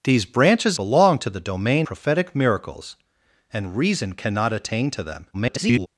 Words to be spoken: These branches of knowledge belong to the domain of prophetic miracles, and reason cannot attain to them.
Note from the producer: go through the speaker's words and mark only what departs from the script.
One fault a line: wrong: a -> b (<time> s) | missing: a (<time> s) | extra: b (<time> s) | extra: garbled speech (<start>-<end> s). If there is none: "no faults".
missing: of knowledge (0.8 s)
missing: of (1.9 s)
extra: garbled speech (5.3-5.9 s)